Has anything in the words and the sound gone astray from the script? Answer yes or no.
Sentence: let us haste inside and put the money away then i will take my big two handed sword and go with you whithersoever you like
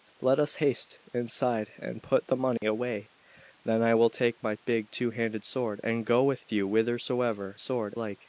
yes